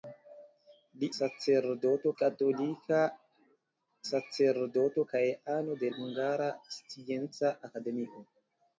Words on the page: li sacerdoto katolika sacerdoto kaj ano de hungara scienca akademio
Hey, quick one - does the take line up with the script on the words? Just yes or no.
yes